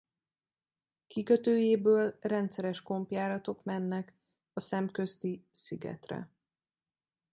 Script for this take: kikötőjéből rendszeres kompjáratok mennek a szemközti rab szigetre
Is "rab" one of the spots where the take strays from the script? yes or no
yes